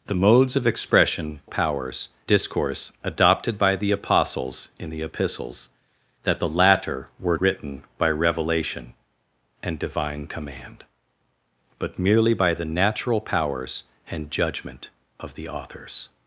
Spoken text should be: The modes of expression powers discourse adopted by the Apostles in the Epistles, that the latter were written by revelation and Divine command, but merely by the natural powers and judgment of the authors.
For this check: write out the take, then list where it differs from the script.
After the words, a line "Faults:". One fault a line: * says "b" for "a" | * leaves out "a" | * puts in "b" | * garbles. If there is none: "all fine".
The modes of expression powers discourse adopted by the Apostles in the Epistles, that the latter were written by revelation and Divine command, but merely by the natural powers and judgment of the authors.
Faults:
all fine